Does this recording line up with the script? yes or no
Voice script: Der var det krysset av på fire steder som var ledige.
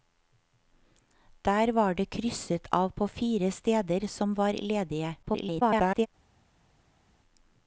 no